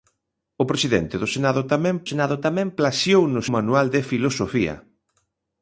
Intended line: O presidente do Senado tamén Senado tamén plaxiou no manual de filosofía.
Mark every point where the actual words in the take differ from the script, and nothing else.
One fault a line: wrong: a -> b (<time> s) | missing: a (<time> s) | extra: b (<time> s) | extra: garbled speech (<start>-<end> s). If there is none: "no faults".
no faults